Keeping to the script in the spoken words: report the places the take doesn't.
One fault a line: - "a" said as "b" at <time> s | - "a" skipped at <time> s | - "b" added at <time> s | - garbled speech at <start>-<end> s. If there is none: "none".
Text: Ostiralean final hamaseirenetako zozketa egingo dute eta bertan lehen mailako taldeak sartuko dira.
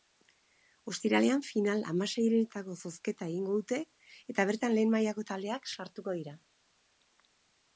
none